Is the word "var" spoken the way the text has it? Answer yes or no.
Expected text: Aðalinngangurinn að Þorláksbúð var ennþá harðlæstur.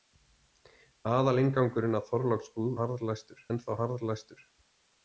no